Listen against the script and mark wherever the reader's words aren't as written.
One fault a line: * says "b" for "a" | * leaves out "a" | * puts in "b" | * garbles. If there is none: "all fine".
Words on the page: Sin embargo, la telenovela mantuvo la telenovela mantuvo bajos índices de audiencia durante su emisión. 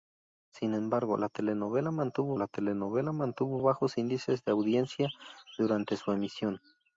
all fine